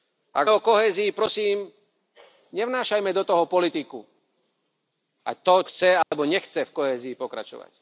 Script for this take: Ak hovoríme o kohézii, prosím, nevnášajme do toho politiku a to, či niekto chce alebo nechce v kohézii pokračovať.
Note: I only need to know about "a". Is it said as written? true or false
true